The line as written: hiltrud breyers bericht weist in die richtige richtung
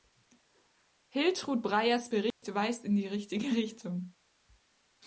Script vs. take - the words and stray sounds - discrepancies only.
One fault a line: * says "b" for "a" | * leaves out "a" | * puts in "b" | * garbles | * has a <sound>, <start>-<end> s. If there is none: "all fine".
* has a dropout, 2.3-2.4 s